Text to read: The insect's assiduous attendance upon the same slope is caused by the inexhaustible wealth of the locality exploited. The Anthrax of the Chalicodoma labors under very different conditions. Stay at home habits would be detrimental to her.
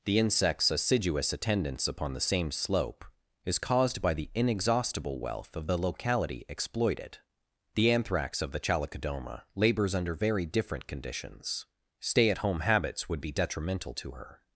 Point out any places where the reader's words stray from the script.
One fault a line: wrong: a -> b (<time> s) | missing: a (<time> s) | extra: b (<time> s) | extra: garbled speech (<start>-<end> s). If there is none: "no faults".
no faults